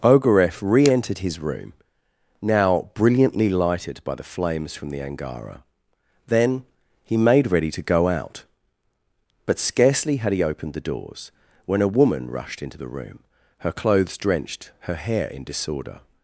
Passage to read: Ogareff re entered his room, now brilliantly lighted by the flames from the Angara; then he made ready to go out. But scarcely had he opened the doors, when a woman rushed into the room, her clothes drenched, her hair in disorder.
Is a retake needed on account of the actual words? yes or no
no